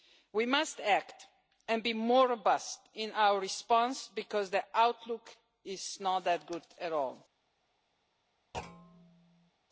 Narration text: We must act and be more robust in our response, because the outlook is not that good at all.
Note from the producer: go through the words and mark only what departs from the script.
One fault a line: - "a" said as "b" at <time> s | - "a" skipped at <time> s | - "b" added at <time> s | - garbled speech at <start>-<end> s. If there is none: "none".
none